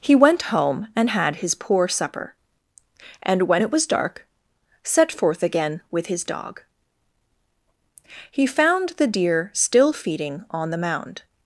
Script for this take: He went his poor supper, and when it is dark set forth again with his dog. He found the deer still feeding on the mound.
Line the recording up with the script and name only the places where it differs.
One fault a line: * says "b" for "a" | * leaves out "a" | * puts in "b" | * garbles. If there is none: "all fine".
* puts in "home and had"
* says "was" for "is"